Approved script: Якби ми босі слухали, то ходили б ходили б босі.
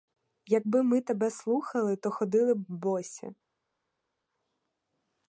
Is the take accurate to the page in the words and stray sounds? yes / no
no